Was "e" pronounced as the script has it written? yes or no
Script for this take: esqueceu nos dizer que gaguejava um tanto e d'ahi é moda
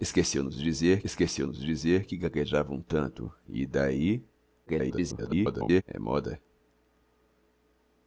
yes